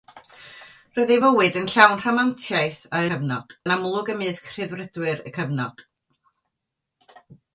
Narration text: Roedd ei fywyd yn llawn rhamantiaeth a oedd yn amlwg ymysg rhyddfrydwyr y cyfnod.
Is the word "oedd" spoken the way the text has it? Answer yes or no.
no